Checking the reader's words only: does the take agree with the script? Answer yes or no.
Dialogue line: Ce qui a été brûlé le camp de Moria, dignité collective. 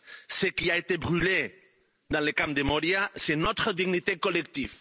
no